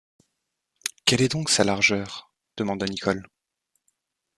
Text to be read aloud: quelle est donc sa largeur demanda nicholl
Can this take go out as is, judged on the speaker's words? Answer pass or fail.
pass